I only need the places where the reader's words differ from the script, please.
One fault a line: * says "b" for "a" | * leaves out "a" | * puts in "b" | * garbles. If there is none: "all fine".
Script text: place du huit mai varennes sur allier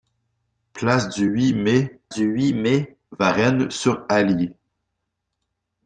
* puts in "du huit mai"